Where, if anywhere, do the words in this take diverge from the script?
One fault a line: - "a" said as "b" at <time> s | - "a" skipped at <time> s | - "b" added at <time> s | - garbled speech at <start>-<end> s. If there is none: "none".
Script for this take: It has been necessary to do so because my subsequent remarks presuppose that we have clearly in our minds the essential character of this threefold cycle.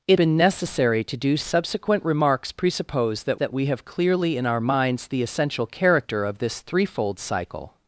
- "has" skipped at 0.2 s
- "so because my" skipped at 1.4 s
- "that" added at 3.4 s